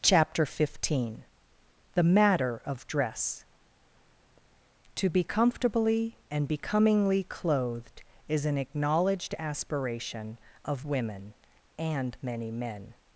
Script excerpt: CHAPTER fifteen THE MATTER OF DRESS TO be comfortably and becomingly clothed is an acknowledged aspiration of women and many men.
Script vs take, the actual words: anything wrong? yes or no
no